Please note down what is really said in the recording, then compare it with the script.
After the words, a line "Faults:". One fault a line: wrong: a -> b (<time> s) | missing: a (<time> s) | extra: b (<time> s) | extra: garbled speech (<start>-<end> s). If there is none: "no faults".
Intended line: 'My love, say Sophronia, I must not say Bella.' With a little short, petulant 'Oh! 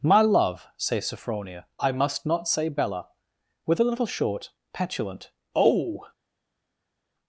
'My love, say Sophronia, I must not say Bella.' With a little short, petulant 'Oh!
Faults:
no faults